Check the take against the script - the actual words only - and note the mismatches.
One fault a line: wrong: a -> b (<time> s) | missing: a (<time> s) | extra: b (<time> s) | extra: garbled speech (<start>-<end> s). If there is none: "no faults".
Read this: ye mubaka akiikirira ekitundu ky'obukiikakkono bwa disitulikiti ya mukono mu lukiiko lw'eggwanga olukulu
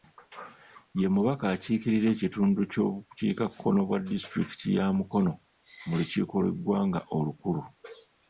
no faults